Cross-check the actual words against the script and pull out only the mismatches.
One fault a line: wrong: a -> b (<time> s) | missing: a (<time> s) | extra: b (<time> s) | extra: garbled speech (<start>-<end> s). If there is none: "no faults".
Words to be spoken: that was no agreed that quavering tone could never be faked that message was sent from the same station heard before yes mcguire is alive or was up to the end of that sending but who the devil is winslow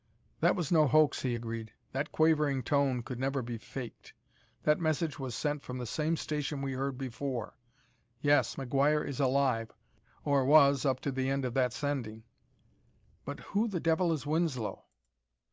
extra: hoax he (0.9 s)
extra: we (6.6 s)